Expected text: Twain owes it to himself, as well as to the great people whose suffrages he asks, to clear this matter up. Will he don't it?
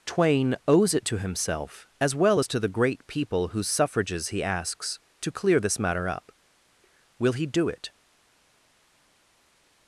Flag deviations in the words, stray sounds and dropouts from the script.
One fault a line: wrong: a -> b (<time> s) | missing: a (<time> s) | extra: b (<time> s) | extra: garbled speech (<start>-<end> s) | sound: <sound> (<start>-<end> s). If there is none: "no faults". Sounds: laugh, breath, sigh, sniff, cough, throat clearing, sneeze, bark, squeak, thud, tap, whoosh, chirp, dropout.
wrong: don't -> do (7.5 s)